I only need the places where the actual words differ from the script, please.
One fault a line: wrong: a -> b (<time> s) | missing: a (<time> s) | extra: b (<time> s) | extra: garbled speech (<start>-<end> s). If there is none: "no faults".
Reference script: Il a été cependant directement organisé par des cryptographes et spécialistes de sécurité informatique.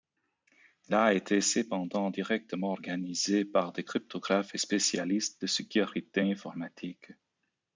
no faults